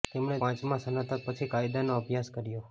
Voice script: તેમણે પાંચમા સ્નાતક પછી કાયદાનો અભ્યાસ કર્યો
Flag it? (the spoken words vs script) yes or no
no